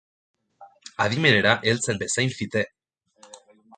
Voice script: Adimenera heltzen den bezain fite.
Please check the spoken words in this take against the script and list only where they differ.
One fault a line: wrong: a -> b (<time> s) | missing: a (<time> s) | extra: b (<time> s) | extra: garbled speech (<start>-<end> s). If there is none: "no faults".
missing: den (2.0 s)